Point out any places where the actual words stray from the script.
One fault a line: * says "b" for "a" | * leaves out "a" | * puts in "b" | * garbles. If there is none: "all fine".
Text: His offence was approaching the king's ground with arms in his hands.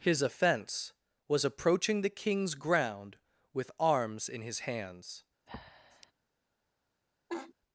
all fine